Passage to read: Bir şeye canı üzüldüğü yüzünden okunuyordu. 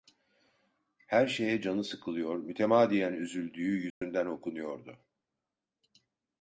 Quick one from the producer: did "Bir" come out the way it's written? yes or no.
no